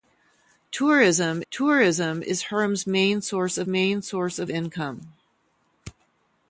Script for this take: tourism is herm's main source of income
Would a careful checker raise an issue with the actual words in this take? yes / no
yes